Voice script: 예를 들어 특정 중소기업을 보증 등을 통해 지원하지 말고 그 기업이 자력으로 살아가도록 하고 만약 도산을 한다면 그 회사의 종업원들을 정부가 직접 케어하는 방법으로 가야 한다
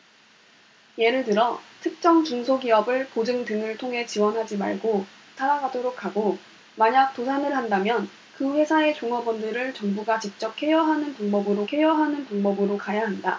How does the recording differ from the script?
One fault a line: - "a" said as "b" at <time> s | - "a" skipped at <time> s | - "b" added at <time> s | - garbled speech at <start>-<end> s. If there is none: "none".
- "그 기업이 자력으로" skipped at 5.1 s
- "케어하는 방법으로" added at 11.7 s